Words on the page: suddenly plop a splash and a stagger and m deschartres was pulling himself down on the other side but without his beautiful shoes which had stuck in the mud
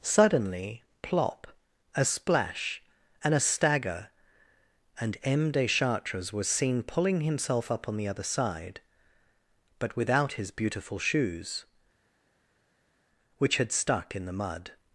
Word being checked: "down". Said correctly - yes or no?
no